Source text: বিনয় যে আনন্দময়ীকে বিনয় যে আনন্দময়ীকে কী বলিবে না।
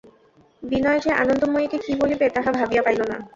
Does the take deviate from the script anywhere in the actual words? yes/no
yes